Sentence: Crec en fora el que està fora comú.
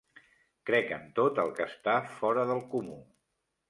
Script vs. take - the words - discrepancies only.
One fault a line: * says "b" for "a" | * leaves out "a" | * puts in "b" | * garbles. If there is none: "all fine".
* says "tot" for "fora"
* puts in "del"